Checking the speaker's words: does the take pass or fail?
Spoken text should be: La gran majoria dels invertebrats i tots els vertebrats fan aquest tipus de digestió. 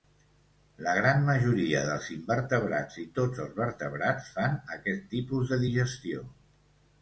pass